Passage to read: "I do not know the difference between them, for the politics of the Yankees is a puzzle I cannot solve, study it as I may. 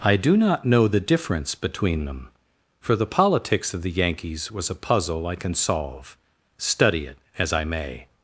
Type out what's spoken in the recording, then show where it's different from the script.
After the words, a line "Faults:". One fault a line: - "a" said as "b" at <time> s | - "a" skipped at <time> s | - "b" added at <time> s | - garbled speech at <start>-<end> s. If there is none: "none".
"I do not know the difference between them, for the politics of the Yankees was a puzzle I can solve, study it as I may.
Faults:
- "is" said as "was" at 4.5 s
- "cannot" said as "can" at 5.4 s